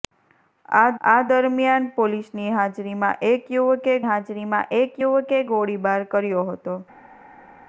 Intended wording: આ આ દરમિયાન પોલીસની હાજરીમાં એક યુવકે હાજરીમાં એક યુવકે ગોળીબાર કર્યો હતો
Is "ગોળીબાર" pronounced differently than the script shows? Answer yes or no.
no